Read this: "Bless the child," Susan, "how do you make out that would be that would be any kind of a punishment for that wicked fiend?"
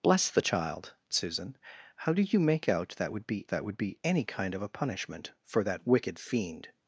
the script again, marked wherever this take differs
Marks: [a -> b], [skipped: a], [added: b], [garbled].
"Bless the child," Susan, "how do you make out that would be that would be any kind of a punishment for that wicked fiend?"